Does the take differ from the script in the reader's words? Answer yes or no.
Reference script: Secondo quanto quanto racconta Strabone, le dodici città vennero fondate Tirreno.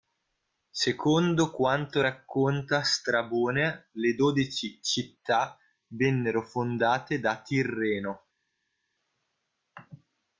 yes